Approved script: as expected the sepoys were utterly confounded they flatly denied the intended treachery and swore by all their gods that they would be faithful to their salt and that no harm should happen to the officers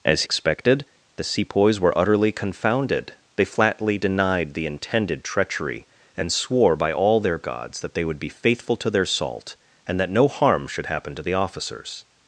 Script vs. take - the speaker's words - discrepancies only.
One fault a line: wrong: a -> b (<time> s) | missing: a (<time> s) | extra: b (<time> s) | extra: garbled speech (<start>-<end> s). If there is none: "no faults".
no faults